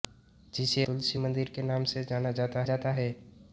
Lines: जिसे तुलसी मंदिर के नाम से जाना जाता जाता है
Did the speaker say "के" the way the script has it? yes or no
yes